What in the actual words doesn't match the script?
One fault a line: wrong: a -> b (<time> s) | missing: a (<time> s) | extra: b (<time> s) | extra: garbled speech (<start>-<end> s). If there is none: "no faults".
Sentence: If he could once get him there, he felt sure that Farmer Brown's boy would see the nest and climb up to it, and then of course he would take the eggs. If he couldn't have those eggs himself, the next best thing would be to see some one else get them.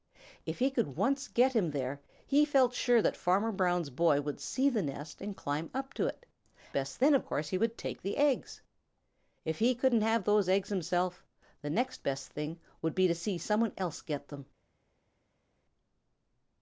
wrong: and -> best (6.7 s)